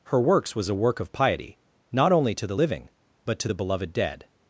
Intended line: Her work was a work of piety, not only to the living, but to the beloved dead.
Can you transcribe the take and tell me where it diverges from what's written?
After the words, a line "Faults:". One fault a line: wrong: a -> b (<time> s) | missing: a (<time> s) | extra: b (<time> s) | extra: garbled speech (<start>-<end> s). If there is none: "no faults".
Her works was a work of piety, not only to the living, but to the beloved dead.
Faults:
wrong: work -> works (0.2 s)